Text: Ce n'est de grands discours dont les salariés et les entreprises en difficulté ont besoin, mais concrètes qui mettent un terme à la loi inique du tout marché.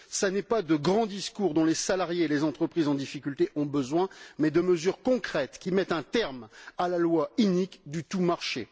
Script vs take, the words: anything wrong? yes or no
yes